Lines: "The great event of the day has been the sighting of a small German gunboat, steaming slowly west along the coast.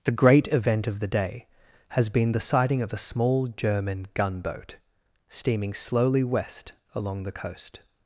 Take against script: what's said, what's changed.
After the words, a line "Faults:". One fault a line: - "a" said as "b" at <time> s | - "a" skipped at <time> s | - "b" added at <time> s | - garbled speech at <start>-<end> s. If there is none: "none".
"The great event of the day has been the sighting of a small German gunboat, steaming slowly west along the coast.
Faults:
none